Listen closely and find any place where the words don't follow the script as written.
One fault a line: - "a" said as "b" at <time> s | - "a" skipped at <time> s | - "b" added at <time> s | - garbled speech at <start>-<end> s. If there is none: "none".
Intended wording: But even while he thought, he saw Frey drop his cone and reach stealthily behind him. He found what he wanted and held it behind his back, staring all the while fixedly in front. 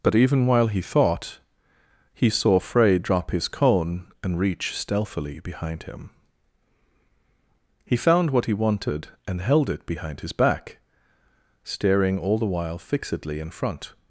none